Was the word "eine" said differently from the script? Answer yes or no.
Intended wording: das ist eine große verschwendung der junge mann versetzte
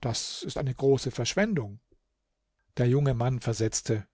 no